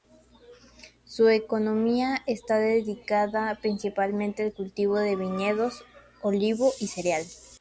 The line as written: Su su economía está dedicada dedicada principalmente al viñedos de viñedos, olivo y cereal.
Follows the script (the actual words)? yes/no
no